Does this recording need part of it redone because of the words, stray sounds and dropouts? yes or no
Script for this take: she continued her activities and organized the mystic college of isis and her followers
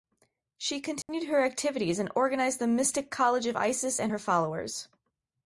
yes